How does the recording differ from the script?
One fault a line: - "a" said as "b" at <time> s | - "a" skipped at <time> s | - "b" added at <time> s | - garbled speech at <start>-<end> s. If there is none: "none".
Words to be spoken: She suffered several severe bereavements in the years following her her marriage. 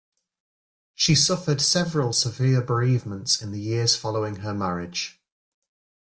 - "her" skipped at 4.5 s